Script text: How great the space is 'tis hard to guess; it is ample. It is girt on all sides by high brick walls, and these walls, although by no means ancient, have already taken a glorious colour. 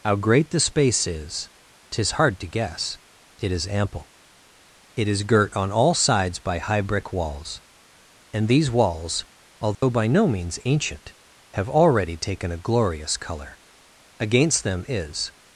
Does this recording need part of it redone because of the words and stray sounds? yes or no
yes